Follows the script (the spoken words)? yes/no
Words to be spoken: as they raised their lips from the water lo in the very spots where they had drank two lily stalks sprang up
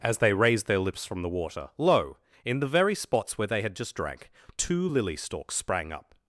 no